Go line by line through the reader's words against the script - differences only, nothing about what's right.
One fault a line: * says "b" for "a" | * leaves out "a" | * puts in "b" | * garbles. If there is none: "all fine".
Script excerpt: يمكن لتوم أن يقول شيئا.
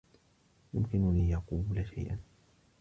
* leaves out "لتوم أن"